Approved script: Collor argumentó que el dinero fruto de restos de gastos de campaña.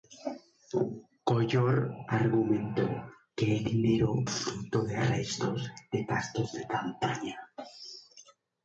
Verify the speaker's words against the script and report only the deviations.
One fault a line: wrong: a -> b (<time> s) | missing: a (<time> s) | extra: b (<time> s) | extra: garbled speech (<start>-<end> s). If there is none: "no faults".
no faults